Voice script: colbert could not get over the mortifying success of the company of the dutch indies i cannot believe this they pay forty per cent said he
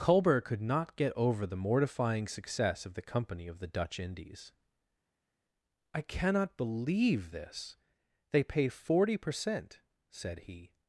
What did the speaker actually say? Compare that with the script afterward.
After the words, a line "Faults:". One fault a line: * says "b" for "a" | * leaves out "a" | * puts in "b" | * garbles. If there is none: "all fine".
colbert could not get over the mortifying success of the company of the dutch indies i cannot believe this they pay forty per cent said he
Faults:
all fine